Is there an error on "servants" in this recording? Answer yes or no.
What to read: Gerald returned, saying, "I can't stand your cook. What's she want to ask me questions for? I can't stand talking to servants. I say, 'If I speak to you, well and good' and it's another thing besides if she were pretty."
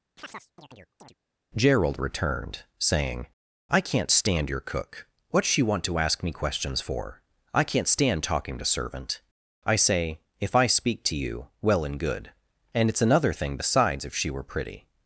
yes